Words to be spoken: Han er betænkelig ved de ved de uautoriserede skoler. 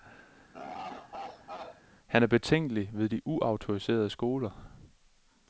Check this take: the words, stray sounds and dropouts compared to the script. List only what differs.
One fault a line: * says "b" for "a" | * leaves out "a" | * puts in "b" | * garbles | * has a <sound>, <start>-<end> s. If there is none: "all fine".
* has a laugh, 0.5-1.8 s
* leaves out "ved de"